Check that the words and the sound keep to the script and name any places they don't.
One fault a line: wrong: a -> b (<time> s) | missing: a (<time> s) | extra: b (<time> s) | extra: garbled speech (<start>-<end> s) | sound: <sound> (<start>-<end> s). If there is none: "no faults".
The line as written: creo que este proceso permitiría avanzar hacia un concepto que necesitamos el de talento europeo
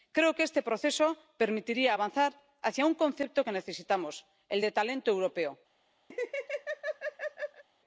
sound: laugh (6.1-7.6 s)